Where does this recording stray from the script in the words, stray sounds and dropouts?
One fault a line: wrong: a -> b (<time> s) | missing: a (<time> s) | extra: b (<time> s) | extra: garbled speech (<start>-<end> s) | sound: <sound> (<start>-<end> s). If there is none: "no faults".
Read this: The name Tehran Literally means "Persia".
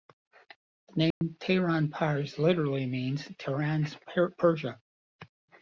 sound: dropout (1.1-1.2 s)
extra: Pars (1.9 s)
extra: Tehran's (3.4 s)